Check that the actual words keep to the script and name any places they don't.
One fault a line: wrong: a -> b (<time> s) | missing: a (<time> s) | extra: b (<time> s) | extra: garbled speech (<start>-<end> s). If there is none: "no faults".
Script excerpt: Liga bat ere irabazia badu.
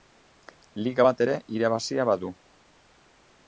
no faults